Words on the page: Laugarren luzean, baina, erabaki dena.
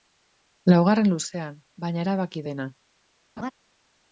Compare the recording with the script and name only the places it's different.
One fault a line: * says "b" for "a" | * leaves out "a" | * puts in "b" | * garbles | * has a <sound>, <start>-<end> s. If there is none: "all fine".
* has a laugh, 3.4-3.5 s